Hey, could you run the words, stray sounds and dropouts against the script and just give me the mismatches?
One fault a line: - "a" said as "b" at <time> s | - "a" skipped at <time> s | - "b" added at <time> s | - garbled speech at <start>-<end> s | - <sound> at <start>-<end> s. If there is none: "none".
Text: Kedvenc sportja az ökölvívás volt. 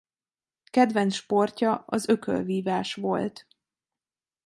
none